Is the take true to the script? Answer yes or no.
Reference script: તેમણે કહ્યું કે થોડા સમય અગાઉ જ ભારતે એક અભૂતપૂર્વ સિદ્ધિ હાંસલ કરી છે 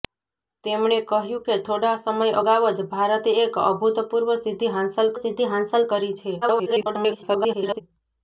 no